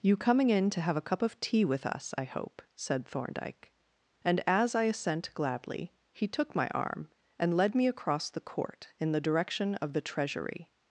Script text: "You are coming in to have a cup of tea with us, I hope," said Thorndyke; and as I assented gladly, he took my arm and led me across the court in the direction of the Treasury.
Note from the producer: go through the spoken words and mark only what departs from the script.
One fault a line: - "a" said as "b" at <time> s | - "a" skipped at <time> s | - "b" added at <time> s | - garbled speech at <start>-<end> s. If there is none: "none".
- "are" skipped at 0.2 s
- "assented" said as "assent" at 4.8 s